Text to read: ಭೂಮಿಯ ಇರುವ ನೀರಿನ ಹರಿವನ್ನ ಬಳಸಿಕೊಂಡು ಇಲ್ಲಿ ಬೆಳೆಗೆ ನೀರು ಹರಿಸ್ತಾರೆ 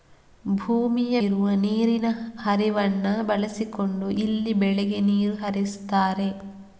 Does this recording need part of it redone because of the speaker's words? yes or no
no